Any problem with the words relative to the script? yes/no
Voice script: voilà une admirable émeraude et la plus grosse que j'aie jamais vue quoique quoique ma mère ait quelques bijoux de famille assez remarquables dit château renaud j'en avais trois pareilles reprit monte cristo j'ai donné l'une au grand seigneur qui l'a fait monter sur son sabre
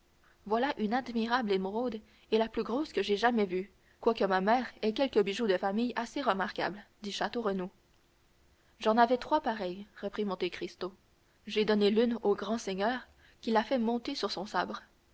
yes